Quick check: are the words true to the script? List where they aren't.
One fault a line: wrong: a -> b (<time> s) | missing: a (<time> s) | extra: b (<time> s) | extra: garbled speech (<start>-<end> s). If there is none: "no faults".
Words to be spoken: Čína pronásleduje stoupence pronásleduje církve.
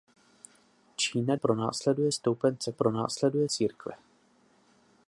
no faults